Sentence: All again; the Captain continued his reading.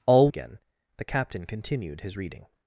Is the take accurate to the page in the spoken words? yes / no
yes